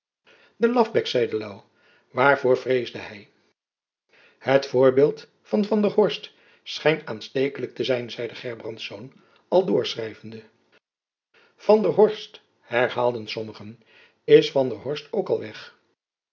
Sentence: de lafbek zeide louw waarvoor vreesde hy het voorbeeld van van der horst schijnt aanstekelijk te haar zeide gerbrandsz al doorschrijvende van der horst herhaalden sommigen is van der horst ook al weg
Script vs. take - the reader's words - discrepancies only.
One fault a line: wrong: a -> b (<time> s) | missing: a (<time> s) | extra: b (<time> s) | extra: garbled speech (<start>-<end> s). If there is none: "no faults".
wrong: haar -> zijn (7.8 s)